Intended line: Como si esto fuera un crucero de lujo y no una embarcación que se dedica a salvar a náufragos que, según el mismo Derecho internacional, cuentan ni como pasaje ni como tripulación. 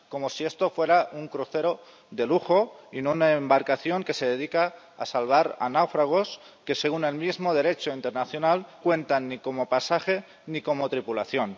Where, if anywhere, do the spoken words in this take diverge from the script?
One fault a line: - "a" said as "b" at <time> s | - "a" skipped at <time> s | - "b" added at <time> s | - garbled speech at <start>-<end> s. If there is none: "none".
none